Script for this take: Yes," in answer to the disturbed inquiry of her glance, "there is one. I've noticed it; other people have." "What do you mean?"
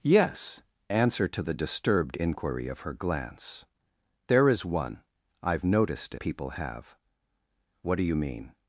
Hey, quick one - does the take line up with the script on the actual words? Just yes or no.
no